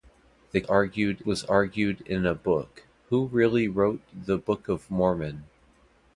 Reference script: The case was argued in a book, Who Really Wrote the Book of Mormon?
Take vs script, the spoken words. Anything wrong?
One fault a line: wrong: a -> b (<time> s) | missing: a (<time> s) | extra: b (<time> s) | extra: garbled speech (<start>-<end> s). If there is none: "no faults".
wrong: case -> argued (0.6 s)